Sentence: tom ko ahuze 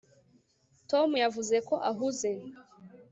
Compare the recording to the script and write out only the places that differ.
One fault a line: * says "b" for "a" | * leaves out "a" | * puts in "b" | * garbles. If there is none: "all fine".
* puts in "yavuze"